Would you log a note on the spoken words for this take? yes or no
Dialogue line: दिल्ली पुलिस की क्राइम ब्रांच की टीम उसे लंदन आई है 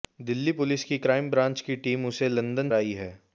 no